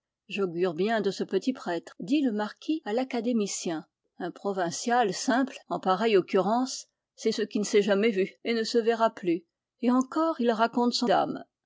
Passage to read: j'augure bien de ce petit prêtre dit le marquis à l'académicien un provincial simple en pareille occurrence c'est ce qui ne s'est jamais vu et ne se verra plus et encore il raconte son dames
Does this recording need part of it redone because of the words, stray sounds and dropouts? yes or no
no